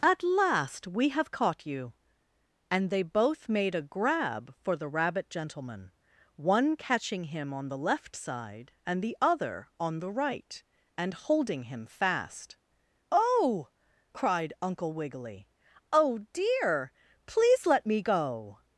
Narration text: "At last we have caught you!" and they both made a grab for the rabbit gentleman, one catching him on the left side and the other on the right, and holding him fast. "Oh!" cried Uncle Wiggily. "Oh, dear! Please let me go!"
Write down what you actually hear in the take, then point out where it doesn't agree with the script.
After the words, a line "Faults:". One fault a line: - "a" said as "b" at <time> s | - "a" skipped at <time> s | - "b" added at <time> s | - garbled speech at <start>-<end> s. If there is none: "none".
"At last we have caught you!" and they both made a grab for the rabbit gentleman, one catching him on the left side and the other on the right, and holding him fast. "Oh!" cried Uncle Wiggily. "Oh, dear! Please let me go!"
Faults:
none